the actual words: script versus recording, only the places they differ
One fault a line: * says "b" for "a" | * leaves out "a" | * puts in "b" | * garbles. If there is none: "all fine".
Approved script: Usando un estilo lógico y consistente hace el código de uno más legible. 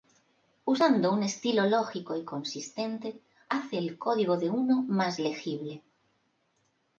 all fine